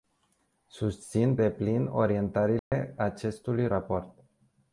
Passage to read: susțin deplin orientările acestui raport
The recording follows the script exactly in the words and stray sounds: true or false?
false